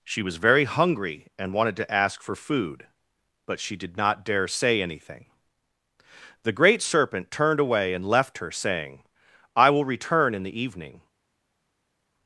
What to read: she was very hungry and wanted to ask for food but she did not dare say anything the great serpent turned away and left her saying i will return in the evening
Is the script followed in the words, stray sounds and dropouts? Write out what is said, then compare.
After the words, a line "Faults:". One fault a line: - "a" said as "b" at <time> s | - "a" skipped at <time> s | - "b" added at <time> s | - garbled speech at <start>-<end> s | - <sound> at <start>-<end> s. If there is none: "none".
she was very hungry and wanted to ask for food but she did not dare say anything the great serpent turned away and left her saying i will return in the evening
Faults:
none